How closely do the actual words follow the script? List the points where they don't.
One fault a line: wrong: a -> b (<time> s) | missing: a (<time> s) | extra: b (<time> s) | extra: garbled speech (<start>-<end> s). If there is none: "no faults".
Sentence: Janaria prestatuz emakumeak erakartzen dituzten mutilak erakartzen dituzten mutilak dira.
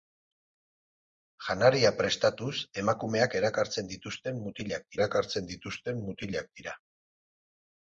no faults